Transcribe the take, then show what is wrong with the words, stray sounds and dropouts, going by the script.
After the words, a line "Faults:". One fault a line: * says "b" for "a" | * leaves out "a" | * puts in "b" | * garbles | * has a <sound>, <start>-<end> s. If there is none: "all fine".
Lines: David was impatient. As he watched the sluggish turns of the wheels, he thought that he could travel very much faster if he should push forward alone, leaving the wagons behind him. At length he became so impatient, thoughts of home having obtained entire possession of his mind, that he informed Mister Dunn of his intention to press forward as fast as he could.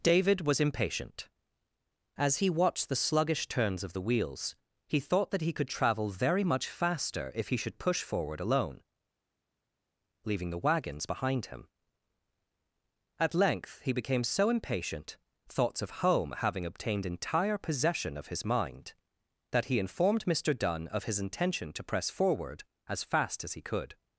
David was impatient. As he watched the sluggish turns of the wheels, he thought that he could travel very much faster if he should push forward alone, leaving the wagons behind him. At length he became so impatient, thoughts of home having obtained entire possession of his mind, that he informed Mister Dunn of his intention to press forward as fast as he could.
Faults:
all fine